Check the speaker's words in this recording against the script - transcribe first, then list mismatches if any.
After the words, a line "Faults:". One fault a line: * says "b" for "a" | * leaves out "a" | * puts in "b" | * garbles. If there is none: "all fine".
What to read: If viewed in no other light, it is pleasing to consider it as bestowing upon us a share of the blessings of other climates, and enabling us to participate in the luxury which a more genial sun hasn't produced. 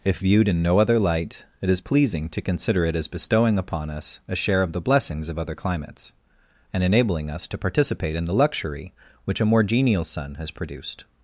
If viewed in no other light, it is pleasing to consider it as bestowing upon us a share of the blessings of other climates, and enabling us to participate in the luxury which a more genial sun has produced.
Faults:
* says "has" for "hasn't"